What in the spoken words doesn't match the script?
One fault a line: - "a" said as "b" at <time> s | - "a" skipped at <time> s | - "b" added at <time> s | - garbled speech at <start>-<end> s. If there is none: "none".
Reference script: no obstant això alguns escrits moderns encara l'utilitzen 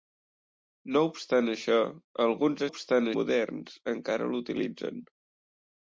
- "escrits" said as "obstant" at 2.7 s